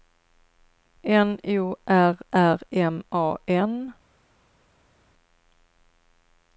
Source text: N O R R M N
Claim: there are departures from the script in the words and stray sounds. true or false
true